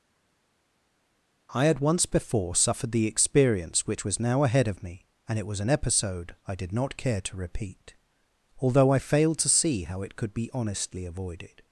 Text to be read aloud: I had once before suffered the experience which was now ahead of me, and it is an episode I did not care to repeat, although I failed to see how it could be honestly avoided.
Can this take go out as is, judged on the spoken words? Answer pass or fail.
fail